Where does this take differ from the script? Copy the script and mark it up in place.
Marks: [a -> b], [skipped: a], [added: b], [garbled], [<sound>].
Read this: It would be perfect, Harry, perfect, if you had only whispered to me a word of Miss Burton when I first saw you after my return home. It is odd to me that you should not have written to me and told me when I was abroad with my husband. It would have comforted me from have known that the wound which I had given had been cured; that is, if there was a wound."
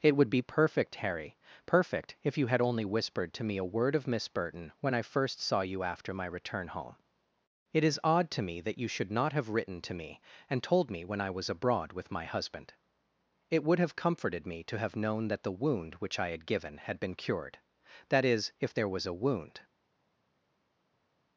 It would be perfect, Harry, perfect, if you had only whispered to me a word of Miss Burton when I first saw you after my return home. It is odd to me that you should not have written to me and told me when I was abroad with my husband. It would have comforted me [from -> to] have known that the wound which I had given had been cured; that is, if there was a wound."